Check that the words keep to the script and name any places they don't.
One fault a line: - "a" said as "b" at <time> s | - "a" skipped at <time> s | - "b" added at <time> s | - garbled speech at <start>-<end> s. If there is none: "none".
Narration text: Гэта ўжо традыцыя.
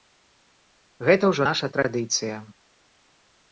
- "наша" added at 1.5 s